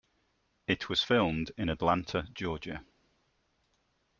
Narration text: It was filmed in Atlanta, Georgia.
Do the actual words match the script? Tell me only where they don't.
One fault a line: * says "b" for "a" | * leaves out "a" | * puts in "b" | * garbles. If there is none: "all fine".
all fine